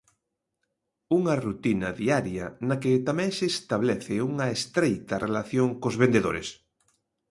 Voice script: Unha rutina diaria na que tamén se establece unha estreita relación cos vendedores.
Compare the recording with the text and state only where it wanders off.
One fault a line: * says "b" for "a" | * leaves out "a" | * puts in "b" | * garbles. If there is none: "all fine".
all fine